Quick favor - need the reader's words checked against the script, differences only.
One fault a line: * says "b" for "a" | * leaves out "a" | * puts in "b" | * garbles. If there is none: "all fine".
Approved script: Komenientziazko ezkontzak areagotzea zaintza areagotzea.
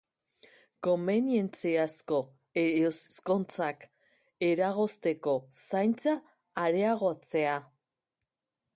* says "eragozteko" for "areagotzea"